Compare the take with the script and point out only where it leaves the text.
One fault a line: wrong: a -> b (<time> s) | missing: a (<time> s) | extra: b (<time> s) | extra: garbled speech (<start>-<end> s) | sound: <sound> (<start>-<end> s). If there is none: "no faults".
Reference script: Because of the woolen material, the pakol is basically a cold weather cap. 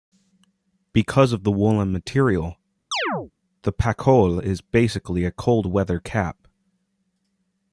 sound: chirp (2.9-3.3 s)